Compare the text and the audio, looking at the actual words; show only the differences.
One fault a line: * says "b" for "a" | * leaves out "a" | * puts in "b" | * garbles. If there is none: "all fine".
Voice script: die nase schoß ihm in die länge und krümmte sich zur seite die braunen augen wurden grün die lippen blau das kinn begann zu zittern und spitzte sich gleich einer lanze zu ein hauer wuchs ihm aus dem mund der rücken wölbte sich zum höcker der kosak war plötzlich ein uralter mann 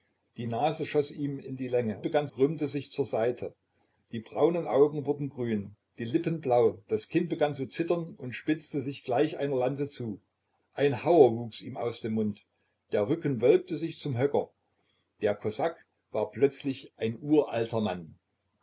* says "begann" for "und"